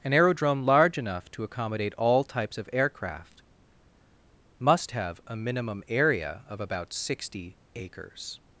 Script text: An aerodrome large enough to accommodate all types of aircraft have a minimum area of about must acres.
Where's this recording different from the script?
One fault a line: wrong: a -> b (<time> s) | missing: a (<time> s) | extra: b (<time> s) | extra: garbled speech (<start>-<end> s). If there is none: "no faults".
extra: must (4.6 s)
wrong: must -> sixty (6.9 s)